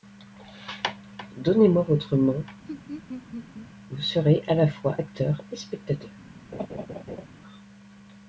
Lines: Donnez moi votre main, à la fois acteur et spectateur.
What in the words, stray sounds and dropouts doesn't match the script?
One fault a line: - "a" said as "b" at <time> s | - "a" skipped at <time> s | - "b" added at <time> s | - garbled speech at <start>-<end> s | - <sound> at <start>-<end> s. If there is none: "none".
- laugh at 2.7-3.7 s
- "vous serez" added at 3.9 s
- laugh at 6.5-7.3 s